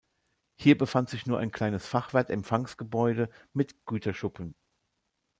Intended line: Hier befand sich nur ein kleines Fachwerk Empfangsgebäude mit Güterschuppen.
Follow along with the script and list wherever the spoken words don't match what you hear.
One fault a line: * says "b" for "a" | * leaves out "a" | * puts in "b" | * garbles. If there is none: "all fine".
all fine